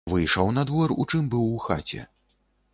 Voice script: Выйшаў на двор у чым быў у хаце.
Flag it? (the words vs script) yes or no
no